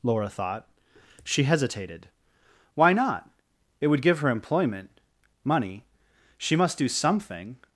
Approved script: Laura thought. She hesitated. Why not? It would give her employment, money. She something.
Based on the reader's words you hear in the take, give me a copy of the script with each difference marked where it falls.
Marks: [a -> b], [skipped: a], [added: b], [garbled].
Laura thought. She hesitated. Why not? It would give her employment, money. She [added: must do] something.